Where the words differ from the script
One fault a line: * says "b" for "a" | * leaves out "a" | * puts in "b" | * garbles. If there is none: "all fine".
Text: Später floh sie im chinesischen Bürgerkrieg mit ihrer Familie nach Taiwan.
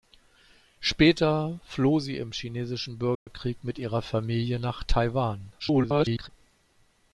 * garbles